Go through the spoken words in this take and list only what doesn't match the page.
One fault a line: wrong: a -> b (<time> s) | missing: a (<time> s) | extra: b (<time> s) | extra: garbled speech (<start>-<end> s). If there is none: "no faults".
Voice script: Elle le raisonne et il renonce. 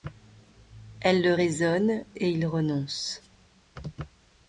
no faults